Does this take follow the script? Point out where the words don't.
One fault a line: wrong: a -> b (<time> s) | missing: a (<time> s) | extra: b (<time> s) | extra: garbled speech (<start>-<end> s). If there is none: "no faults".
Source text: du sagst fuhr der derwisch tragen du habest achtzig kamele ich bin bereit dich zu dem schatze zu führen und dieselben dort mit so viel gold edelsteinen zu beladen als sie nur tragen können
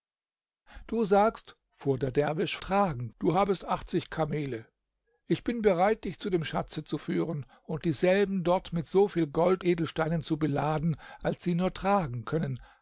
no faults